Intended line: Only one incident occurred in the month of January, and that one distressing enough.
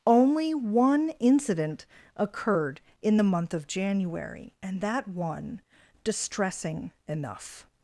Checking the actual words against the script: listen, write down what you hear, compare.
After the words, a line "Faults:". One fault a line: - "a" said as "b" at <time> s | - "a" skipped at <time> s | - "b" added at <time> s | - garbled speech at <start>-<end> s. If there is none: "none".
Only one incident occurred in the month of January, and that one distressing enough.
Faults:
none